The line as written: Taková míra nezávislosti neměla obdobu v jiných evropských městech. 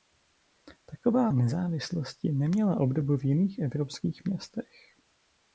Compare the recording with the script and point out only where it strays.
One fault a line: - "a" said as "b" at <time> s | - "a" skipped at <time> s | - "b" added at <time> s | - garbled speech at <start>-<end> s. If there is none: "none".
- "míra" skipped at 1.3 s